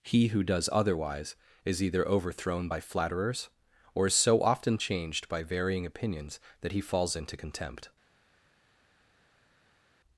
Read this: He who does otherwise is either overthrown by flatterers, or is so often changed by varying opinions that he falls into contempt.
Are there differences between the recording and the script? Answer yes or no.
no